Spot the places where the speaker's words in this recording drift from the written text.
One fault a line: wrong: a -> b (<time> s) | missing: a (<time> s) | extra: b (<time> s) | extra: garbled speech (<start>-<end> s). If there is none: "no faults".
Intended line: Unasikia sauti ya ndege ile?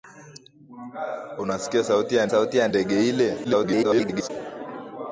extra: sauti ya (2.3 s)
extra: garbled speech (3.4-4.3 s)